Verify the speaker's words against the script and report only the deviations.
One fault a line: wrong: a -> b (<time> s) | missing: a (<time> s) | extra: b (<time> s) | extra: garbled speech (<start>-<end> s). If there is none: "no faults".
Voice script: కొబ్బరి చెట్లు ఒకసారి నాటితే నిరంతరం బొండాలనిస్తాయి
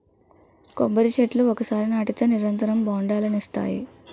no faults